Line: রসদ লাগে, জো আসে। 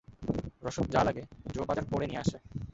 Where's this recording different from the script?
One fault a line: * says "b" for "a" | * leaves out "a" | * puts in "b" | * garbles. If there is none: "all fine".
* puts in "যা"
* puts in "বাজার করে নিয়ে"